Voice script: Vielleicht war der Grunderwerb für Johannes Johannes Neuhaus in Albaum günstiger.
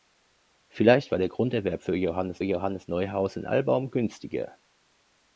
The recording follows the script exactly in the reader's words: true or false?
true